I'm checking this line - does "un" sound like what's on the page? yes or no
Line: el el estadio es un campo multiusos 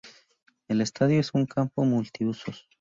yes